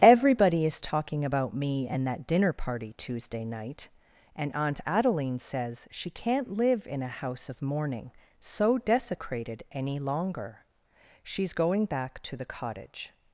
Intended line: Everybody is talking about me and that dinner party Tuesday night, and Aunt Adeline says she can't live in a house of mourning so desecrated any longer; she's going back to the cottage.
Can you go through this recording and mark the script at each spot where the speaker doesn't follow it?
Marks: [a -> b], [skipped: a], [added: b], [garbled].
Everybody is talking about me and that dinner party Tuesday night, and Aunt Adeline says she can't live in a house of mourning so desecrated any longer; she's going back to the cottage.